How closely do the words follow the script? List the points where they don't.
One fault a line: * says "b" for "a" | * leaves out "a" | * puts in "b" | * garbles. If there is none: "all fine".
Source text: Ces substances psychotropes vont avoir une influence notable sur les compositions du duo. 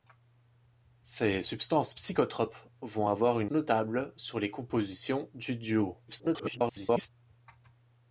* leaves out "influence"
* garbles